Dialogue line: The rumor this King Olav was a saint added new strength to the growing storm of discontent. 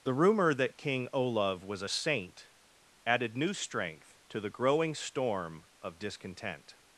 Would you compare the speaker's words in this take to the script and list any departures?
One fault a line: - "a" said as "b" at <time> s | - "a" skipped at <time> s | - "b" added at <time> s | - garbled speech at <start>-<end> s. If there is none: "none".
- "this" said as "that" at 0.6 s